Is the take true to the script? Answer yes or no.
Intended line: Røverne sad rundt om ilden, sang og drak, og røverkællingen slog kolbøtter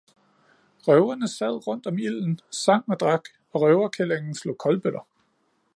yes